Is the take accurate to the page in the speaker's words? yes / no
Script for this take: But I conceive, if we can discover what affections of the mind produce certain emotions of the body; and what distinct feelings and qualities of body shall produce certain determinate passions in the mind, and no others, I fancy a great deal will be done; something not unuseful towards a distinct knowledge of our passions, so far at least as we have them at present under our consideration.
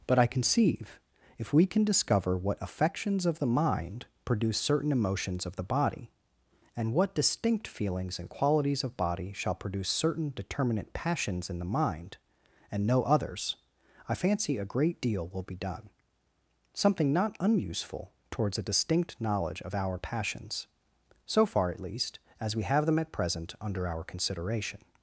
yes